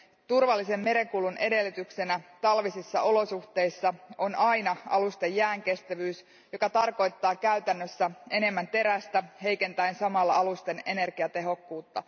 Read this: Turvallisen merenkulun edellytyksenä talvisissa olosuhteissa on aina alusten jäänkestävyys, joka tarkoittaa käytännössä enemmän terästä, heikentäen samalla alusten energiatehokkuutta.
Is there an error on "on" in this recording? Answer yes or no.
no